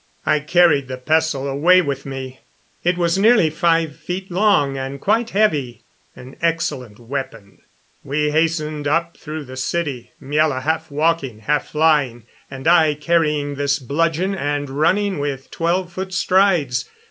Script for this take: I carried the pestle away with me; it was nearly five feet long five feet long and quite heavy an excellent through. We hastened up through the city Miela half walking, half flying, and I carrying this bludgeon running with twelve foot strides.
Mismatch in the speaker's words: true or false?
true